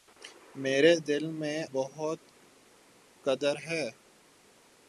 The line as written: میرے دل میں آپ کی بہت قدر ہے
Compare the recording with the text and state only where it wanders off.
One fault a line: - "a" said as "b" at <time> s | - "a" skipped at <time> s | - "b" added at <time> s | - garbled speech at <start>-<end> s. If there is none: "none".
- "آپ کی" skipped at 1.6 s